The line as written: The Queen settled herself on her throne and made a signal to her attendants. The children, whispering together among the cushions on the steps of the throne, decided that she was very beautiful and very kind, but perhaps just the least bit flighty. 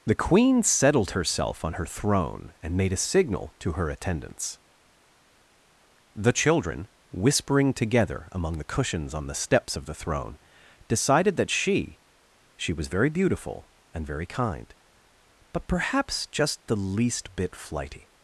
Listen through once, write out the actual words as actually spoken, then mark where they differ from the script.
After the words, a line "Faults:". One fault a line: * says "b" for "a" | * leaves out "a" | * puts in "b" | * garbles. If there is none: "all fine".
The Queen settled herself on her throne and made a signal to her attendants. The children, whispering together among the cushions on the steps of the throne, decided that she she was very beautiful and very kind, but perhaps just the least bit flighty.
Faults:
* puts in "she"